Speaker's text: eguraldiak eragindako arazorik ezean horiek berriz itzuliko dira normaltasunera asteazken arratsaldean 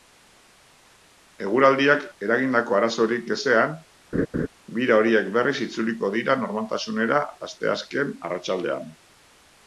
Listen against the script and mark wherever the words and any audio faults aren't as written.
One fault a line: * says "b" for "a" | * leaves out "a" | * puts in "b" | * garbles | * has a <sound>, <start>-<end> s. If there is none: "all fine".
* has a laugh, 4.1-4.5 s
* puts in "bira"